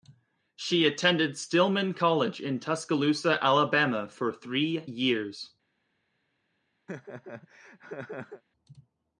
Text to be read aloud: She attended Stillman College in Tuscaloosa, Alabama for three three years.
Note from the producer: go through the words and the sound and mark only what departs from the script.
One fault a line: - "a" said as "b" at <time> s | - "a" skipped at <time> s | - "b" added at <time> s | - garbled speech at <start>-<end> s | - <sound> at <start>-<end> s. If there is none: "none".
- "three" skipped at 4.9 s
- laugh at 6.9-8.4 s